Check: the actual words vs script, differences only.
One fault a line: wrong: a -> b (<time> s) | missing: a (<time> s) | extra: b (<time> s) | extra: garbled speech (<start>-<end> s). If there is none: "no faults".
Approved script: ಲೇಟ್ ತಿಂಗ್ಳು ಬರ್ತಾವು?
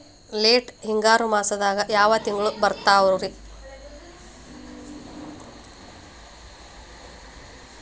extra: ಹಿಂಗಾರು ಮಾಸದಾಗ ಯಾವ್ (0.8 s)